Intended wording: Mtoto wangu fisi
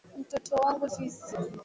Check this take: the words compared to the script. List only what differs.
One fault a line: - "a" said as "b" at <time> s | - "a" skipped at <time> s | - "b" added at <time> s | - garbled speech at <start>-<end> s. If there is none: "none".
none